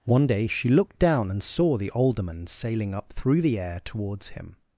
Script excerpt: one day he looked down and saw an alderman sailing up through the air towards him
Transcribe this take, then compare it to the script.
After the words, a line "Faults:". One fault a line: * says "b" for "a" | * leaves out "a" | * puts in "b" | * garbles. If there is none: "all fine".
one day she looked down and saw the alderman sailing up through the air towards him
Faults:
* says "she" for "he"
* says "the" for "an"